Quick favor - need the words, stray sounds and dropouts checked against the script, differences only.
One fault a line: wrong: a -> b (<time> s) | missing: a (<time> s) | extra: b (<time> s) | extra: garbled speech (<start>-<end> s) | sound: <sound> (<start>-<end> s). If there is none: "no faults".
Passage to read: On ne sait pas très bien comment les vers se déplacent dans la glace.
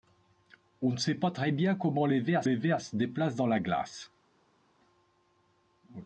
extra: les vers (2.4 s)